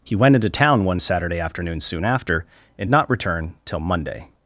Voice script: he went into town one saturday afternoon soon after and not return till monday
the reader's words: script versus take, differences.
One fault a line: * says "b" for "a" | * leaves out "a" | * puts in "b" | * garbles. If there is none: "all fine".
all fine